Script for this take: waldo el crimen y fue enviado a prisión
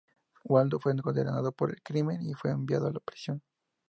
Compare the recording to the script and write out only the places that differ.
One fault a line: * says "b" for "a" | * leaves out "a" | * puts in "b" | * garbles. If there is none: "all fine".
* puts in "fue condenado por"